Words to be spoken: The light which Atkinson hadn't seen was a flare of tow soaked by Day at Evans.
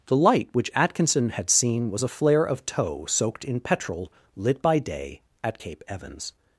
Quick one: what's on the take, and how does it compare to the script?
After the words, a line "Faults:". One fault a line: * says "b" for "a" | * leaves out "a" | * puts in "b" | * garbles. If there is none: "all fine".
The light which Atkinson had seen was a flare of tow soaked in petrol lit by Day at Cape Evans.
Faults:
* says "had" for "hadn't"
* puts in "in petrol lit"
* puts in "Cape"